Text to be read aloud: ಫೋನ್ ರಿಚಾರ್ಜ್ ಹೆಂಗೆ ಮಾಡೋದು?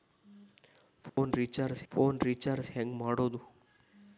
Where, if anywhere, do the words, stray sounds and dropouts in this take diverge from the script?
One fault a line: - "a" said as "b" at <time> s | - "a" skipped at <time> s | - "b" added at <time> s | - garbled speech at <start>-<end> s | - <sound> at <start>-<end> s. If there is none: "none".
- dropout at 1.1-1.2 s
- "ಫೋನ್ ರಿಚಾರ್ಜ್" added at 1.9 s